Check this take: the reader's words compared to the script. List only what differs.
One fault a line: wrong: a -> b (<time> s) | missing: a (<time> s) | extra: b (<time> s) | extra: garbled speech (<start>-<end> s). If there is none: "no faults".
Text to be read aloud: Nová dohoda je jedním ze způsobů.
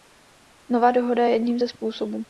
no faults